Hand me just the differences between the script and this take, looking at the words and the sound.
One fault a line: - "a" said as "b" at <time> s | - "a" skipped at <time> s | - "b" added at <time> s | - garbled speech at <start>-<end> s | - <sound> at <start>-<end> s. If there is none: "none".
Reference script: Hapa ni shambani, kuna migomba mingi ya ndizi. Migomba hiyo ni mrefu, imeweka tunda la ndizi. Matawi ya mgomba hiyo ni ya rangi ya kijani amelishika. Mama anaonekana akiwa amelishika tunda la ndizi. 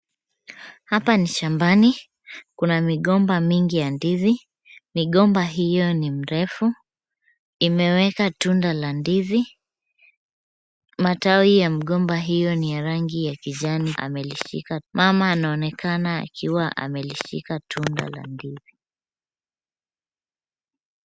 none